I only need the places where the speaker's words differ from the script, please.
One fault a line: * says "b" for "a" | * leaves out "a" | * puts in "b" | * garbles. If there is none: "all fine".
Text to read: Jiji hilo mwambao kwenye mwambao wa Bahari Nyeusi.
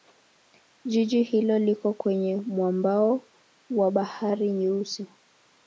* says "liko" for "mwambao"